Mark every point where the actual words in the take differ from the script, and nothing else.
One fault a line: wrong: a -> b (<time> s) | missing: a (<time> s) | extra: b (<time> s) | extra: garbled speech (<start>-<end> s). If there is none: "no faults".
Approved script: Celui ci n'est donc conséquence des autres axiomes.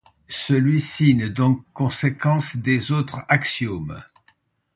no faults